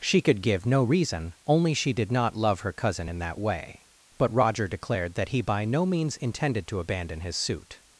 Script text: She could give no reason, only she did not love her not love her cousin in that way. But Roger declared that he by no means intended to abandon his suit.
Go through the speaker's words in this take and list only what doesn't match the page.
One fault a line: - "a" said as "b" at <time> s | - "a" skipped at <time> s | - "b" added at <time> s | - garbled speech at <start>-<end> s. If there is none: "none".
- "not love her" skipped at 2.7 s